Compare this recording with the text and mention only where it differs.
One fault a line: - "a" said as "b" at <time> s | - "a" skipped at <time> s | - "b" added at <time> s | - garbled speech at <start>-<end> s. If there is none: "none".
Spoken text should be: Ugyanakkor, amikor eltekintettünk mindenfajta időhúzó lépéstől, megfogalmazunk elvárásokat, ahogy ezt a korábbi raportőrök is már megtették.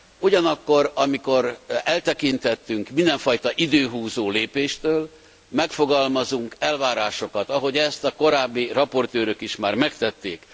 none